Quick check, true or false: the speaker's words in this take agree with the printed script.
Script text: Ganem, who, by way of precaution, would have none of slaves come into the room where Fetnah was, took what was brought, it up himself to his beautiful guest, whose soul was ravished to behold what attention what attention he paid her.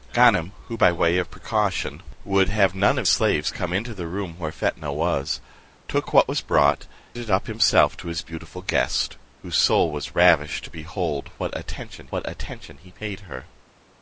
true